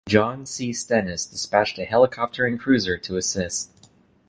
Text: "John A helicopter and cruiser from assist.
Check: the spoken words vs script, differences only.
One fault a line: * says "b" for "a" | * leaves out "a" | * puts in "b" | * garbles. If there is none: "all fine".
* puts in "C Stennis dispatched"
* says "to" for "from"